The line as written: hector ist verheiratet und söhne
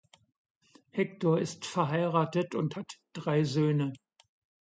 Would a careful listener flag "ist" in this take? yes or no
no